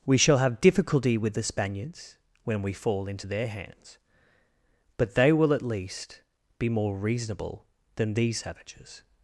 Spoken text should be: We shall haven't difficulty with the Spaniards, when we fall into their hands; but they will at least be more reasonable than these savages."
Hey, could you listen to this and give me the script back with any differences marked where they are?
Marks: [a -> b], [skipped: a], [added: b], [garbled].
We shall [haven't -> have] difficulty with the Spaniards, when we fall into their hands; but they will at least be more reasonable than these savages."